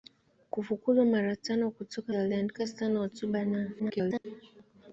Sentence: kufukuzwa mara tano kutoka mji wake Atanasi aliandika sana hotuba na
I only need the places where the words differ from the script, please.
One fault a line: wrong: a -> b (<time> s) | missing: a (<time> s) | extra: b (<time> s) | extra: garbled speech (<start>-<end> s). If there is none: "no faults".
missing: mji wake Atanasi (2.1 s)
extra: garbled speech (3.8-4.3 s)